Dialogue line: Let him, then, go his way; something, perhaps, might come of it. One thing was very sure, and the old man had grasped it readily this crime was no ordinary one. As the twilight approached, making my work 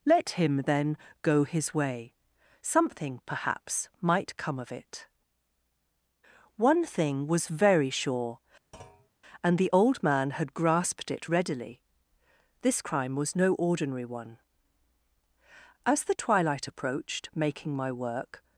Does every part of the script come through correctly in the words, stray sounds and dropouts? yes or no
no